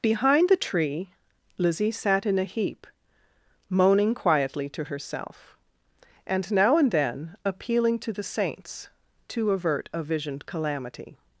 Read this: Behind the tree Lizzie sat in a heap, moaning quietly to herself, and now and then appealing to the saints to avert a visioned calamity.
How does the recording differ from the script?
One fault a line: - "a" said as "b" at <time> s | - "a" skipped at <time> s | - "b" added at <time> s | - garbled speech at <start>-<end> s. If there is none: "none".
none